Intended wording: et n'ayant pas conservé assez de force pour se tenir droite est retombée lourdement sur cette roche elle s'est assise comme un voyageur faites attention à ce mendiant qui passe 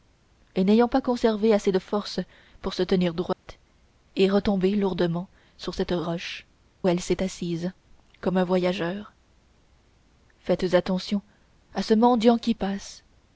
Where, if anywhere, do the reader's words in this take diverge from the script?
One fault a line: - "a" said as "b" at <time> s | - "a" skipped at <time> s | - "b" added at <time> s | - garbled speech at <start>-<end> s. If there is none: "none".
none